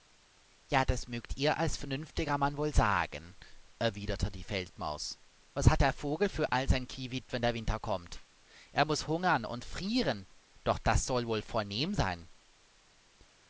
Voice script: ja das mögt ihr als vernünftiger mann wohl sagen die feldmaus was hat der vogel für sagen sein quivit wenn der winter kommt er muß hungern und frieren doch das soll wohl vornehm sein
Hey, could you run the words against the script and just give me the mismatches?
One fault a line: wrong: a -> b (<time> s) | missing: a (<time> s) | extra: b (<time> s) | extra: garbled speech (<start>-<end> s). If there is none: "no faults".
extra: erwiderte (3.8 s)
wrong: sagen -> all (6.5 s)